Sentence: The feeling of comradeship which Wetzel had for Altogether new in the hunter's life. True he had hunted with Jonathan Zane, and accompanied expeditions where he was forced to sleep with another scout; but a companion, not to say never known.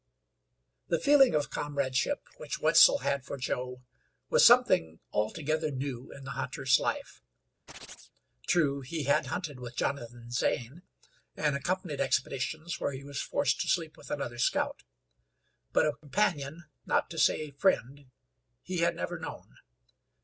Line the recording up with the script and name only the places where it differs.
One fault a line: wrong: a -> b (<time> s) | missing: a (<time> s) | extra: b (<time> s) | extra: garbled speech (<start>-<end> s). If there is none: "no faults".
extra: Joe was something (3.4 s)
extra: friend he had (17.5 s)